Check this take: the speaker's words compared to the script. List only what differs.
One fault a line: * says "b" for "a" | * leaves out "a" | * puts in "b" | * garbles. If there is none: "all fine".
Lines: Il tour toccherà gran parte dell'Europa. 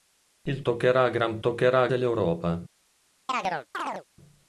* leaves out "tour"
* says "toccherà" for "parte"